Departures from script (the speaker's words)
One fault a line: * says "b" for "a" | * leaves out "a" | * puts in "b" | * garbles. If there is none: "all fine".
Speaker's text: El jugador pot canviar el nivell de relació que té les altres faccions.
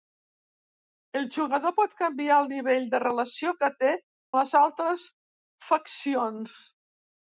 all fine